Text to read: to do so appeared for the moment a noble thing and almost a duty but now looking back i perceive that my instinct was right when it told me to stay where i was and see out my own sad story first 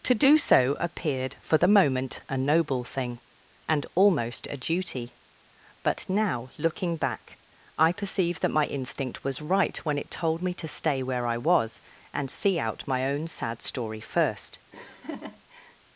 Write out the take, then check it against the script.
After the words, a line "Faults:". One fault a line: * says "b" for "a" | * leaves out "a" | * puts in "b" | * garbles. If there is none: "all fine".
to do so appeared for the moment a noble thing and almost a duty but now looking back i perceive that my instinct was right when it told me to stay where i was and see out my own sad story first
Faults:
all fine